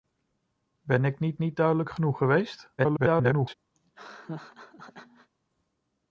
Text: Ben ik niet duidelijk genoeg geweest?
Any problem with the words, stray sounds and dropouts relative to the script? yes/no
yes